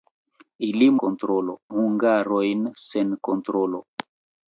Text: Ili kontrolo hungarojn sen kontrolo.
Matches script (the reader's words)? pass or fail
pass